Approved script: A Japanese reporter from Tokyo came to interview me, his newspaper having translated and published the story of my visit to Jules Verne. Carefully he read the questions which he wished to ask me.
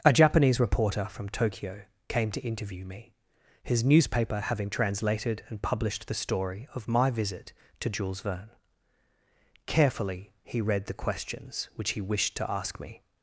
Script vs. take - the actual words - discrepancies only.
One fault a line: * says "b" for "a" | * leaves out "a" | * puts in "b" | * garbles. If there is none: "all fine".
all fine